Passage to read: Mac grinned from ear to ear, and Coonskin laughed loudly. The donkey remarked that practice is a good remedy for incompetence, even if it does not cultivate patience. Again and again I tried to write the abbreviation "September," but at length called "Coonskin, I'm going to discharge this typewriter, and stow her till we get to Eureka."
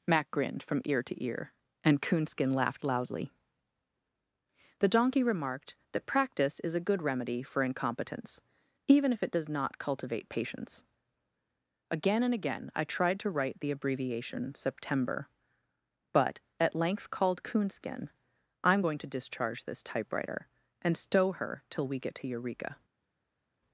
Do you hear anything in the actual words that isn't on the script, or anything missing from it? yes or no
no